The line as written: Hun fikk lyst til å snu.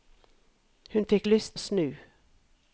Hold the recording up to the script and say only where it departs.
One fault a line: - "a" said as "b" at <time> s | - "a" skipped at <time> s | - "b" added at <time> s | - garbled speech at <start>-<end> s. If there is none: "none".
- "til" skipped at 1.6 s